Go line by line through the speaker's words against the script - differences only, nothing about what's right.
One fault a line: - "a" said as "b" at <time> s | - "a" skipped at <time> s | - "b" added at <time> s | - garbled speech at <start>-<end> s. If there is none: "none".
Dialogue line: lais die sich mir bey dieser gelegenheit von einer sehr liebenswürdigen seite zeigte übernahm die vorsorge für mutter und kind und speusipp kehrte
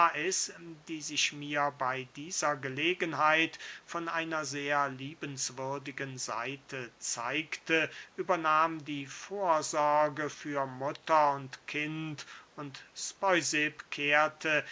none